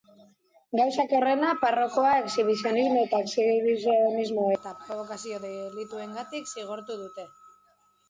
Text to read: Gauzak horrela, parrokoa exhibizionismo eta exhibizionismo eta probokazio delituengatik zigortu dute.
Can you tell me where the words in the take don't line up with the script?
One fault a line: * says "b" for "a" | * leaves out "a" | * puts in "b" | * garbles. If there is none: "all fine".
all fine